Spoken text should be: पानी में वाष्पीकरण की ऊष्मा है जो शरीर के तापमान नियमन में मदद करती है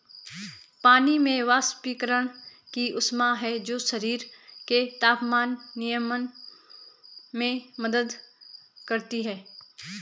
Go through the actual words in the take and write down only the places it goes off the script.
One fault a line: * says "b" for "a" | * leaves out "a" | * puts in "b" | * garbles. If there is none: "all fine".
all fine